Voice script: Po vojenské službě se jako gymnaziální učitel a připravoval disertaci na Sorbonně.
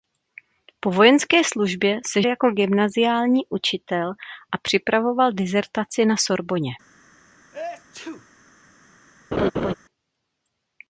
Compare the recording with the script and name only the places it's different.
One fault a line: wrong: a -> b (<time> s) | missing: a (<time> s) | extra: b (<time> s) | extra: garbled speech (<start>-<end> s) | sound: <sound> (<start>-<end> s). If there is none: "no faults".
sound: sneeze (7.5-8.3 s)
sound: laugh (9.3-9.7 s)